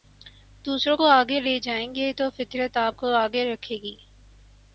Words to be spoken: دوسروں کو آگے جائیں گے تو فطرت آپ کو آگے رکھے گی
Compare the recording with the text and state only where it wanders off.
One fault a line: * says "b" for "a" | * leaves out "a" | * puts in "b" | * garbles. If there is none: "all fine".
* puts in "لے"